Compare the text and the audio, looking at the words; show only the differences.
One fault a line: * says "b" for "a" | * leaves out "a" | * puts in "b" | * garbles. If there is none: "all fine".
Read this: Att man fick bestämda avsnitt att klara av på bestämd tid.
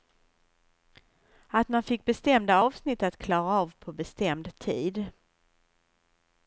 all fine